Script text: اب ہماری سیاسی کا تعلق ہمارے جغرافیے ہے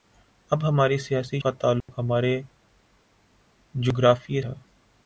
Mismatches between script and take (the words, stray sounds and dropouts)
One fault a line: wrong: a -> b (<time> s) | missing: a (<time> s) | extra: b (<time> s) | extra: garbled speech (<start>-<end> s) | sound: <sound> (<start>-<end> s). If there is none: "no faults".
sound: dropout (1.8-1.9 s)